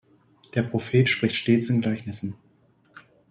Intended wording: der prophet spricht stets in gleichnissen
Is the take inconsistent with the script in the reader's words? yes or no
no